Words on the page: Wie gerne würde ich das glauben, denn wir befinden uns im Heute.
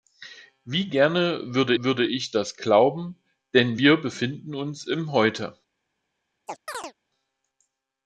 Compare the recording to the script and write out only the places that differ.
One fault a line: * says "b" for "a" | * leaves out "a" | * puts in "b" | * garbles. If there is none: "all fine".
* puts in "würde"